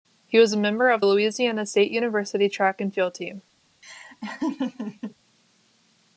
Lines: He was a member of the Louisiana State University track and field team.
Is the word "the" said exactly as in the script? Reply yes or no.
no